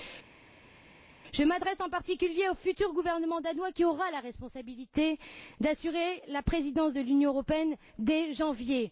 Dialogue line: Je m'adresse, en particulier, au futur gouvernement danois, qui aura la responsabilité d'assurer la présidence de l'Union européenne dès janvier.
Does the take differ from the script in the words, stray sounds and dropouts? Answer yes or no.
no